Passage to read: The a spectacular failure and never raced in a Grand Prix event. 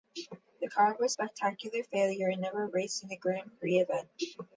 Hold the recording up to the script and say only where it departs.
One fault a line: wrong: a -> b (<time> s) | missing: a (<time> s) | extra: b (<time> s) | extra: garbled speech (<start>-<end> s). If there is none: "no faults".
extra: car was (0.7 s)